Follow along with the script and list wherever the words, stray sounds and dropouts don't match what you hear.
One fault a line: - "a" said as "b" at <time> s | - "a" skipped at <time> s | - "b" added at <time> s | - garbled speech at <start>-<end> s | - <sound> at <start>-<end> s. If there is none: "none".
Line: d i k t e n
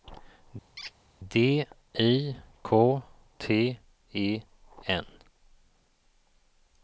- squeak at 0.8-0.9 s